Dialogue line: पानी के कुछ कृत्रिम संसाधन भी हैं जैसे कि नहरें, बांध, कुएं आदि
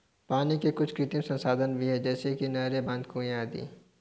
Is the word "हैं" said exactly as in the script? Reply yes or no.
yes